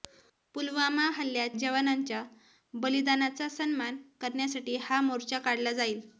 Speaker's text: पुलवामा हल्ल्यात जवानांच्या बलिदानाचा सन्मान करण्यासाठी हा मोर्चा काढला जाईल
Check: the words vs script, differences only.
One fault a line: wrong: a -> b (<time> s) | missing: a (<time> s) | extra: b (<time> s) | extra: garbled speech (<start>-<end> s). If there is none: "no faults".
no faults